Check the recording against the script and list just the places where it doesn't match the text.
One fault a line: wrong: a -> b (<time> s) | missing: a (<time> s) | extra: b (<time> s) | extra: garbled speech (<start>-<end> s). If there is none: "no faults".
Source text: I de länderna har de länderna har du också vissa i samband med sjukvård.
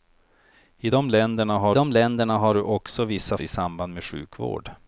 no faults